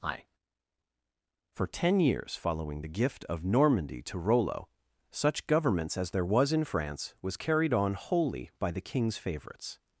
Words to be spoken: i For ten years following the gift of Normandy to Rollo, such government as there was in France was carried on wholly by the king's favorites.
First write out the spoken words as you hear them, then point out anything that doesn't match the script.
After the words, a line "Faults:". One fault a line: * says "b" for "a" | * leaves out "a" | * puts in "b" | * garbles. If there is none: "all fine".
i For ten years following the gift of Normandy to Rollo, such governments as there was in France was carried on wholly by the king's favorites.
Faults:
* says "governments" for "government"